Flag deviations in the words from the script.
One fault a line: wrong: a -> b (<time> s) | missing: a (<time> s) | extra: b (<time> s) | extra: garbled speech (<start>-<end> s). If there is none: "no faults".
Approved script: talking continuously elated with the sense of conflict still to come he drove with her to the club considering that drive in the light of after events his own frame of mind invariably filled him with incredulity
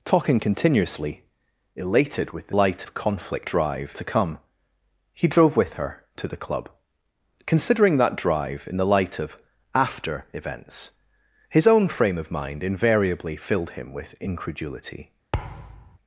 wrong: sense -> light (2.5 s)
wrong: still -> drive (3.4 s)